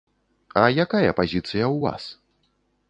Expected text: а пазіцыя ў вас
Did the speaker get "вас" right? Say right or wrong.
right